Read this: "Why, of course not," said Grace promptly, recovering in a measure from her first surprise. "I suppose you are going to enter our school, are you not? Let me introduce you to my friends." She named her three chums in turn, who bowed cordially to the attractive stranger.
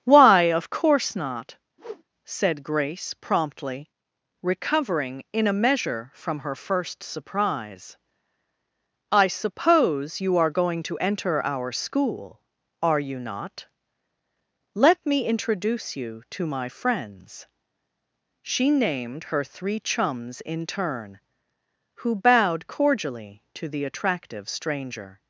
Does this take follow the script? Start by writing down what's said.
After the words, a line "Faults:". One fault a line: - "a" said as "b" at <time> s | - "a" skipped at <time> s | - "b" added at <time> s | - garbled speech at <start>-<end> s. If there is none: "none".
"Why, of course not," said Grace promptly, recovering in a measure from her first surprise. "I suppose you are going to enter our school, are you not? Let me introduce you to my friends." She named her three chums in turn, who bowed cordially to the attractive stranger.
Faults:
none